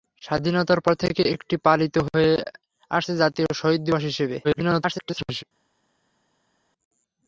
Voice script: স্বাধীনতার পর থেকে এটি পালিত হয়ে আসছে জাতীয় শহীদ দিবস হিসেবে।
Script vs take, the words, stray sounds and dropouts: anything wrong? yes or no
yes